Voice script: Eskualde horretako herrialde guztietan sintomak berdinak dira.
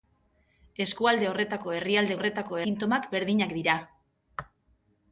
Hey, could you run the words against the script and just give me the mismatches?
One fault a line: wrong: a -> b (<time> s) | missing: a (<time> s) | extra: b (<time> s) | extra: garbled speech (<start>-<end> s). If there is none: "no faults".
wrong: guztietan -> horretako (2.2 s)